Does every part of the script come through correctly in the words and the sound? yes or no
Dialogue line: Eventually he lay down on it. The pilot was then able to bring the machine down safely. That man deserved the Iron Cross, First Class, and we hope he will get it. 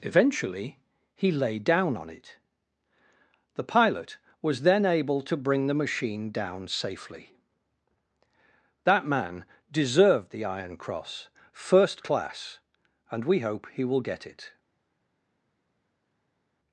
yes